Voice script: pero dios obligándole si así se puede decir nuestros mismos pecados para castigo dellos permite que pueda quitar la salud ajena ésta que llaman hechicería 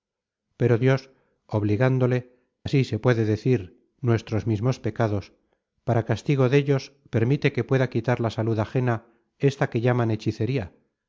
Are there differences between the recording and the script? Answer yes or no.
yes